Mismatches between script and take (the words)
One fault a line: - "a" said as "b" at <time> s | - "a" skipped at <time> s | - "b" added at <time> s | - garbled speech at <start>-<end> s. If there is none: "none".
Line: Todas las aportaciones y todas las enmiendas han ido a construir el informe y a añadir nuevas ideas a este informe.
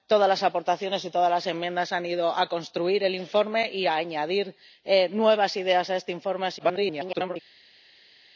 - garbled speech at 6.6-7.4 s